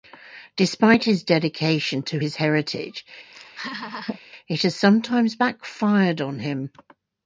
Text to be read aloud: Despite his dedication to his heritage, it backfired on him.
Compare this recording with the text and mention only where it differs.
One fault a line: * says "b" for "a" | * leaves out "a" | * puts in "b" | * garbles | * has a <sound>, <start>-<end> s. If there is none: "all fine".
* has a laugh, 3.3-4.2 s
* puts in "has sometimes"